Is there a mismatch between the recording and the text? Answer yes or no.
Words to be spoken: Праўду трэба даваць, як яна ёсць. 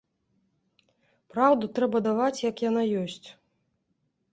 no